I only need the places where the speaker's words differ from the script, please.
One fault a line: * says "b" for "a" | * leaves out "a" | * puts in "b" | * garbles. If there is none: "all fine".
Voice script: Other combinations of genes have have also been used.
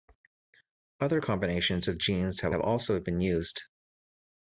all fine